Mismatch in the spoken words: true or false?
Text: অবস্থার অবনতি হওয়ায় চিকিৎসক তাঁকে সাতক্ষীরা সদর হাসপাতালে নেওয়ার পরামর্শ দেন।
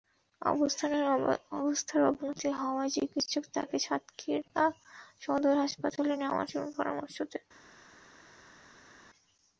false